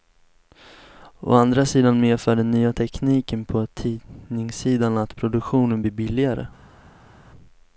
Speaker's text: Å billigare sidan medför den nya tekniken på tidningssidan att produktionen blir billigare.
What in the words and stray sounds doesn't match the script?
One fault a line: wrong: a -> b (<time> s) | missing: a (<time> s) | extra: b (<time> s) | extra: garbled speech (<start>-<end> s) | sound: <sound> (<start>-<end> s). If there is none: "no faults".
wrong: billigare -> andra (1.3 s)